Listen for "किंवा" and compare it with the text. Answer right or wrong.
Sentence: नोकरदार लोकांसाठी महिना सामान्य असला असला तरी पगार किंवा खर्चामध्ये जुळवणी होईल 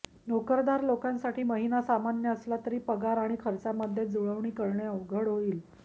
wrong